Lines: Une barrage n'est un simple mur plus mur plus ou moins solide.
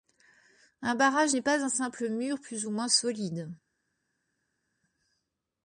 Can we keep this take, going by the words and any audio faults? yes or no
no